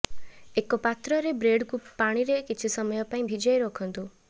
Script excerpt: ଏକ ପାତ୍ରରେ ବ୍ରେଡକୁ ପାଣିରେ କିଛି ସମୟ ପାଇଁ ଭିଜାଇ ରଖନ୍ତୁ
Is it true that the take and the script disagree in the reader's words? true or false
false